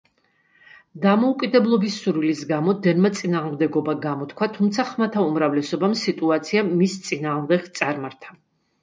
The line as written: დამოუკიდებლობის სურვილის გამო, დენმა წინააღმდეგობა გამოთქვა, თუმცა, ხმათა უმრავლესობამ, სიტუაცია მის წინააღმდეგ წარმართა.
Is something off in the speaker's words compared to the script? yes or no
no